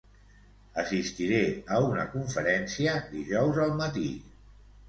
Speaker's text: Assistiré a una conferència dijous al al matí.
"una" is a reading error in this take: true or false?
false